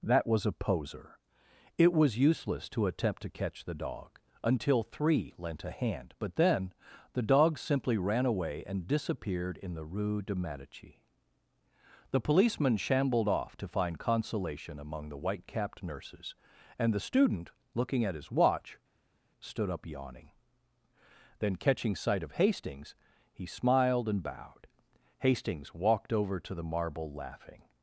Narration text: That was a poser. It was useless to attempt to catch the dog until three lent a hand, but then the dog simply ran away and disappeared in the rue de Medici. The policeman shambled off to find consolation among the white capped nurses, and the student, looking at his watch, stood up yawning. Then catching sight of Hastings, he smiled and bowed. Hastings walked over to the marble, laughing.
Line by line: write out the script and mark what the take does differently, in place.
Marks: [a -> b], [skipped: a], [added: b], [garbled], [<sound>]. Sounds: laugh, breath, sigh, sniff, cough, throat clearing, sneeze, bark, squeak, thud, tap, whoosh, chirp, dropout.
That was a poser. It was useless to attempt to catch the dog until three lent a hand, but then the dog simply ran away and disappeared in the rue de Medici. The policeman shambled off to find consolation among the white capped nurses, and the student, looking at his watch, stood up yawning. Then catching sight of Hastings, he smiled and bowed. Hastings walked over to the marble, laughing.